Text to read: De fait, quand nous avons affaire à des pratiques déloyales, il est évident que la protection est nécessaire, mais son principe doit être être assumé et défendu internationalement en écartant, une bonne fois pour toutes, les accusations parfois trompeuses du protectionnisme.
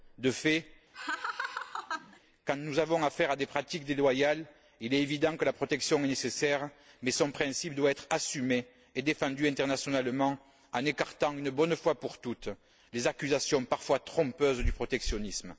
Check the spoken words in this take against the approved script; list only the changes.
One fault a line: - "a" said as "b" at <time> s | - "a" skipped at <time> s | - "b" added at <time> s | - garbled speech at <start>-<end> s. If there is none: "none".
- "être" skipped at 8.1 s